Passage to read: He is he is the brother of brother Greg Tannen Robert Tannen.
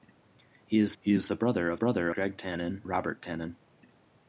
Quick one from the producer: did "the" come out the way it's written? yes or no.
yes